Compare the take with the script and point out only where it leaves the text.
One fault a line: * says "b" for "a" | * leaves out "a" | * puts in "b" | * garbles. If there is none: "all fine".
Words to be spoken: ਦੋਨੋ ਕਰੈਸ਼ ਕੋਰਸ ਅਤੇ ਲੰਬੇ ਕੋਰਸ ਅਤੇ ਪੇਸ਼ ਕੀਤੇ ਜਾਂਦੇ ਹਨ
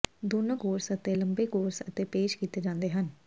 * leaves out "ਕਰੈਸ਼"